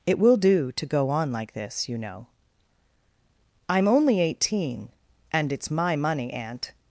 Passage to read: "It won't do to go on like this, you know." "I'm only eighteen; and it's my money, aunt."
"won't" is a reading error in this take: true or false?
true